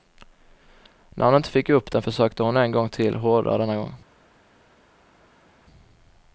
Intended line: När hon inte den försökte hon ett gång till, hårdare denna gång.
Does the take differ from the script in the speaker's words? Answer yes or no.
yes